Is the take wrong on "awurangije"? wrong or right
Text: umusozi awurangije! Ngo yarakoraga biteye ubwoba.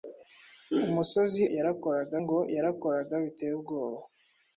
wrong